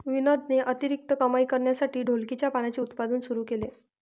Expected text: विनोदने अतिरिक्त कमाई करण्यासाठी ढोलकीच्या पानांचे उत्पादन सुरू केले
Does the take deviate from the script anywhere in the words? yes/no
no